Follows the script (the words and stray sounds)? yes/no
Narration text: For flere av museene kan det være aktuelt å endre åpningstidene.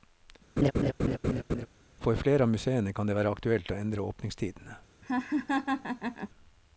no